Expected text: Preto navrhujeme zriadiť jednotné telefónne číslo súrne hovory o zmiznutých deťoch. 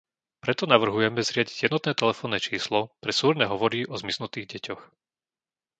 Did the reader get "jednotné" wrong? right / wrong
right